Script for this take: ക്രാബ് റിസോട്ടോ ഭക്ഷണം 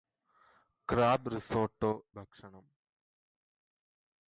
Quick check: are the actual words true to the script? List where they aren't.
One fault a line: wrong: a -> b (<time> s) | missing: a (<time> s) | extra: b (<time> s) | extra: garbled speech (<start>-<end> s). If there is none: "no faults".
no faults